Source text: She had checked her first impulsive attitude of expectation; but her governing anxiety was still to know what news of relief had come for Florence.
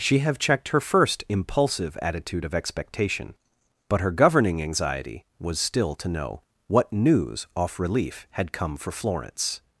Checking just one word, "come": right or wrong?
right